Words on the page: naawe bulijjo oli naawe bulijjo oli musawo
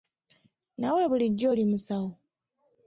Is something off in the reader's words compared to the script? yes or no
yes